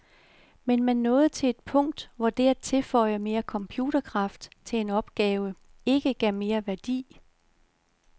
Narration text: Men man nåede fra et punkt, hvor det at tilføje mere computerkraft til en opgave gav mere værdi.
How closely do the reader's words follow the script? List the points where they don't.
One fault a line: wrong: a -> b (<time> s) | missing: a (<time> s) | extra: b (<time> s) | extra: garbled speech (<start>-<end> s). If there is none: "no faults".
wrong: fra -> til (1.3 s)
extra: ikke (5.8 s)